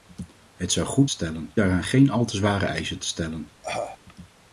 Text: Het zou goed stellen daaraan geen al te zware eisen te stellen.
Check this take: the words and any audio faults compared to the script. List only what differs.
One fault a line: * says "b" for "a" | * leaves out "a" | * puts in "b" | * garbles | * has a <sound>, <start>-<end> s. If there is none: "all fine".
* has a cough, 3.6-4.0 s